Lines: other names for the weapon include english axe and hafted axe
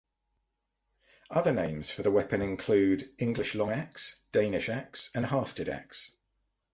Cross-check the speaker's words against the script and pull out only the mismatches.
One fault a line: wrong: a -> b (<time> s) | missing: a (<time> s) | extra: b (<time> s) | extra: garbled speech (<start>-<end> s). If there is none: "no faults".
extra: long axe danish (3.5 s)